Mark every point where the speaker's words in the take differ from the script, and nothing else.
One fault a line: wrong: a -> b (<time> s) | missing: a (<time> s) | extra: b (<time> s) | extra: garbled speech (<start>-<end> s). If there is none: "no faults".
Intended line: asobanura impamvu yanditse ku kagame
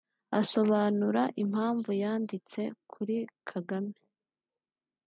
wrong: ku -> kuri (2.9 s)